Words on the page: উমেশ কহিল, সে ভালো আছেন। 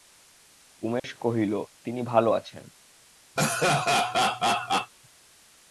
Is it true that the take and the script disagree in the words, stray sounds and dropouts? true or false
true